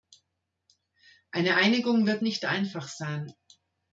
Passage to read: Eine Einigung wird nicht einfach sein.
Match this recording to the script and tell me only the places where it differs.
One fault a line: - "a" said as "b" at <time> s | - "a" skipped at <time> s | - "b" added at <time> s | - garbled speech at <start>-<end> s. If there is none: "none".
none